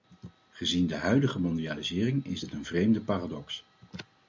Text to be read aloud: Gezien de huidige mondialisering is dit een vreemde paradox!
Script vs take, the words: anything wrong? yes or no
no